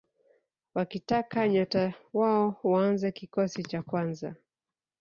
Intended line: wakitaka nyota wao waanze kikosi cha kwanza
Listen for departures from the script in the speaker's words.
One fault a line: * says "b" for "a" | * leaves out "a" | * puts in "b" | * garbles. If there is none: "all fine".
all fine